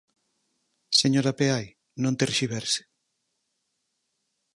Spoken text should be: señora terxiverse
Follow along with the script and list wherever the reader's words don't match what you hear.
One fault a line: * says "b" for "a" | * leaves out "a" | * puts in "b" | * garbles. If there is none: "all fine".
* puts in "peai non"